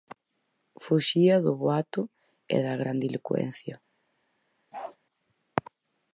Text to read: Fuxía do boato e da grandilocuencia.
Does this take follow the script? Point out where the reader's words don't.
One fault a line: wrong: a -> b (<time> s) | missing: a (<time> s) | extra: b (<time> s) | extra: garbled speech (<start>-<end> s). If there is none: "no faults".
no faults